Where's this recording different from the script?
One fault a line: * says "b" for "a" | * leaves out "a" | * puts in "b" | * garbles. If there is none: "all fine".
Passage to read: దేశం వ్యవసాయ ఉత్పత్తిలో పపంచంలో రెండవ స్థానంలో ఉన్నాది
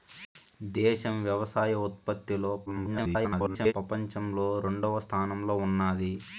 * garbles